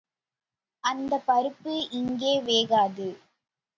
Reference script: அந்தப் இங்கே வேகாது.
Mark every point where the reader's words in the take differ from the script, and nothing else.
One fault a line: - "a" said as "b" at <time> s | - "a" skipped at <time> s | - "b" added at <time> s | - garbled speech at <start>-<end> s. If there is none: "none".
- "பருப்பு" added at 1.3 s